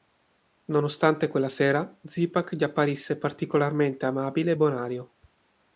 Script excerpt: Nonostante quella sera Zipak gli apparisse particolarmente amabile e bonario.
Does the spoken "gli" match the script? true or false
true